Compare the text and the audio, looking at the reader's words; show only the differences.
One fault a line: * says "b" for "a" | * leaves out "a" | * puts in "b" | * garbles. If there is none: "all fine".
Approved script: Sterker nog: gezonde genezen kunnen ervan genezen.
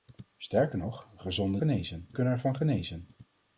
all fine